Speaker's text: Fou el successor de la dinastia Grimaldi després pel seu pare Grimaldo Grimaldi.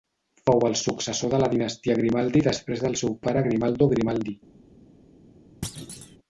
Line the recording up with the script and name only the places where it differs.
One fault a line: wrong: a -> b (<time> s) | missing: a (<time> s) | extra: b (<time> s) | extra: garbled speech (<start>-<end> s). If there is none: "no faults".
wrong: pel -> del (2.9 s)